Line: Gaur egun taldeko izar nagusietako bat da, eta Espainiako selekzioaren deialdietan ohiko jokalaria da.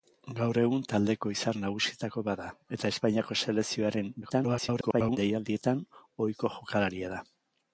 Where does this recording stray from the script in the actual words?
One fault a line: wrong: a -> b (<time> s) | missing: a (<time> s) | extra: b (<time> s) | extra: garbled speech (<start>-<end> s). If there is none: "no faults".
extra: garbled speech (4.2-5.2 s)